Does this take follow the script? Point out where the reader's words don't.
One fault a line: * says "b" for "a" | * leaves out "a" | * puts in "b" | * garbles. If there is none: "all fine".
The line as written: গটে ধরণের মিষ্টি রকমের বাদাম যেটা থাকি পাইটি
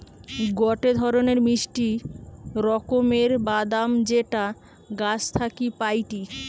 * puts in "গাছ"